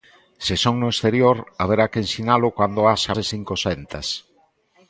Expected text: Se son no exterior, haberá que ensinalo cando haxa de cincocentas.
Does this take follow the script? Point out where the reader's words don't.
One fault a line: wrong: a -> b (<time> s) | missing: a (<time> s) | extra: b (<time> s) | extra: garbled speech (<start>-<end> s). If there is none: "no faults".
no faults